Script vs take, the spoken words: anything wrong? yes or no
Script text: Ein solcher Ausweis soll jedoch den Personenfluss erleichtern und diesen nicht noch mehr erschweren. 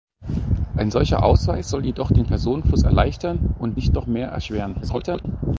yes